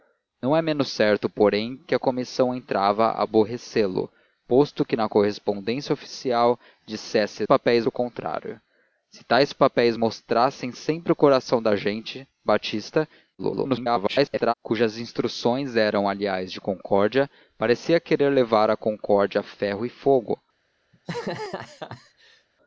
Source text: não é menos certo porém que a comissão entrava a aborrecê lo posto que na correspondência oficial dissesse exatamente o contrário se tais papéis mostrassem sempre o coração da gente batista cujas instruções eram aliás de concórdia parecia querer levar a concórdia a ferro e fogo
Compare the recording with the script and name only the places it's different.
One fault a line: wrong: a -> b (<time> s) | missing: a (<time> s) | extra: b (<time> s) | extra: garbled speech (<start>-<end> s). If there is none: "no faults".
wrong: exatamente -> papéis (7.4 s)
extra: garbled speech (13.4-14.5 s)